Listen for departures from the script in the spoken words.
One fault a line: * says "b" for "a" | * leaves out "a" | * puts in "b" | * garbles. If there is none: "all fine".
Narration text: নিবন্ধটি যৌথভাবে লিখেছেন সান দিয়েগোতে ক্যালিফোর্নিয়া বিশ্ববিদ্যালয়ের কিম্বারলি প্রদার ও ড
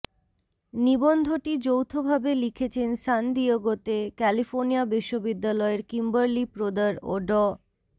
all fine